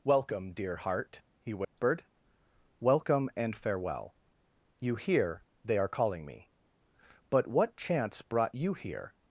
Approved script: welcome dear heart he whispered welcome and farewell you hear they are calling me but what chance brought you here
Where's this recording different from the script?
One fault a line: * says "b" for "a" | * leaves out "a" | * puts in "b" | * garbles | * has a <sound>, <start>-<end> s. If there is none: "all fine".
* has a dropout, 1.6-1.8 s